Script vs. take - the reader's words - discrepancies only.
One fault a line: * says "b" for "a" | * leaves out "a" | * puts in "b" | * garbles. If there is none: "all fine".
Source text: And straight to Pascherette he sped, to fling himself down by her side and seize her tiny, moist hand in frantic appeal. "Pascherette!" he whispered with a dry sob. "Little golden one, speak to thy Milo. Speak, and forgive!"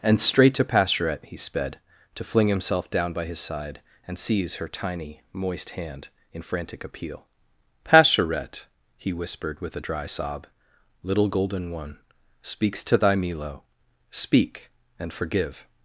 * says "his" for "her"
* says "speaks" for "speak"